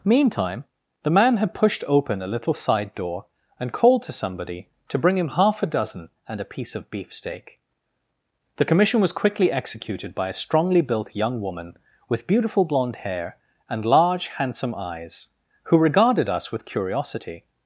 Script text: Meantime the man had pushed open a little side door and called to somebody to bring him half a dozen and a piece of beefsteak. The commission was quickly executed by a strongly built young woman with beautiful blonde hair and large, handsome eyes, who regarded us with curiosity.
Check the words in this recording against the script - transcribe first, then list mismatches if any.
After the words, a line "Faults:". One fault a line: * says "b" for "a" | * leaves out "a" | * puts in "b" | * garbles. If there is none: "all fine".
Meantime the man had pushed open a little side door and called to somebody to bring him half a dozen and a piece of beefsteak. The commission was quickly executed by a strongly built young woman with beautiful blonde hair and large, handsome eyes, who regarded us with curiosity.
Faults:
all fine